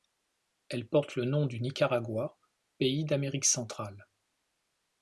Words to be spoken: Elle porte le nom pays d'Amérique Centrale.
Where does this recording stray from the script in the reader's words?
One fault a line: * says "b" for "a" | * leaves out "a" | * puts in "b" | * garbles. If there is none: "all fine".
* puts in "du Nicaragua"